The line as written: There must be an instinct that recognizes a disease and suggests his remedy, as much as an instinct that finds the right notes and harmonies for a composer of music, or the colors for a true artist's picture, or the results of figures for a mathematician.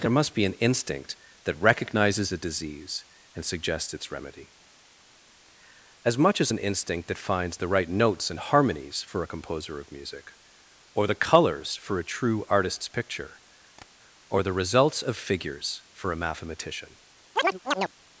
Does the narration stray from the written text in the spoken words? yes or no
yes